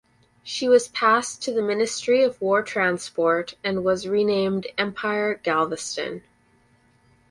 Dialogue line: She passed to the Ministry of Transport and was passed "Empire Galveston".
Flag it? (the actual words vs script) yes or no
yes